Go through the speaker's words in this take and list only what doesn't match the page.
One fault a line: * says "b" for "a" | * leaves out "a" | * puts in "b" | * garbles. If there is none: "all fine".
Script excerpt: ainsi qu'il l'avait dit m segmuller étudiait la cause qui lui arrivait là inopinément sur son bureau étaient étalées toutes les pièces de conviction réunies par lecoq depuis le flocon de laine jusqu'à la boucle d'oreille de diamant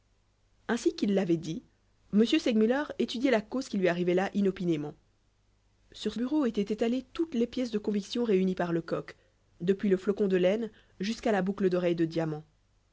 * leaves out "son"